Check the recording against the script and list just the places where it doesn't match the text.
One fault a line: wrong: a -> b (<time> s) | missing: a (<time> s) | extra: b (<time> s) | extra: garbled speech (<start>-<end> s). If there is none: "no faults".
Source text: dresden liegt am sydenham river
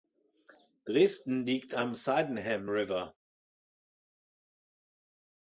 no faults